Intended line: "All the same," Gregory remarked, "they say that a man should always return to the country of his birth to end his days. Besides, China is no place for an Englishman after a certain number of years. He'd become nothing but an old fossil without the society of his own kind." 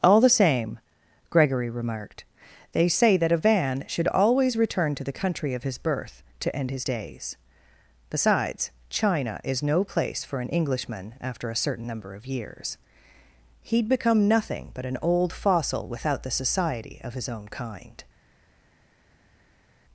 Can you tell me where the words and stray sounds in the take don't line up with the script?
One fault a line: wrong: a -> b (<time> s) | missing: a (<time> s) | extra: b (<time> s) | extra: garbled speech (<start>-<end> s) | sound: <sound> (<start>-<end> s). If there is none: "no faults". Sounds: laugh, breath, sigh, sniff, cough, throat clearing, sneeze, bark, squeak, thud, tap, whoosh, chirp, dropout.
wrong: man -> van (3.4 s)